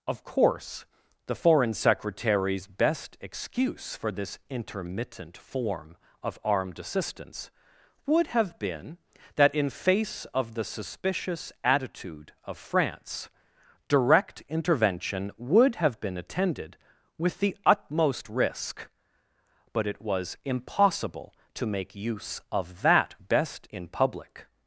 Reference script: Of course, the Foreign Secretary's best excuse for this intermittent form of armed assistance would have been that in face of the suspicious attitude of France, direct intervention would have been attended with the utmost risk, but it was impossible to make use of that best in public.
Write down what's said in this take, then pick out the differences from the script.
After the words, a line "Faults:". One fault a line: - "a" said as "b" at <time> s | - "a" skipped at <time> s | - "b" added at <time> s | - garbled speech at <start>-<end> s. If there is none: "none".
Of course, the Foreign Secretary's best excuse for this intermittent form of armed assistance would have been that in face of the suspicious attitude of France, direct intervention would have been attended with the utmost risk, but it was impossible to make use of that best in public.
Faults:
none